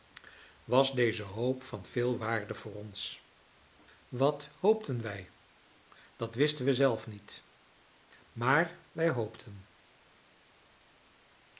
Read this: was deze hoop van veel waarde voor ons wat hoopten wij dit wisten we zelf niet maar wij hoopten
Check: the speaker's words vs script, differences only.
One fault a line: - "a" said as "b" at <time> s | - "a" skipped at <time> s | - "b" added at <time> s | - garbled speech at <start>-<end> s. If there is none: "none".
- "dit" said as "dat" at 6.2 s